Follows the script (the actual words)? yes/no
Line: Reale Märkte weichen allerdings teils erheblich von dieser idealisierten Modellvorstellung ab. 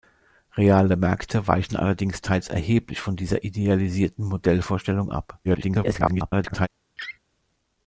no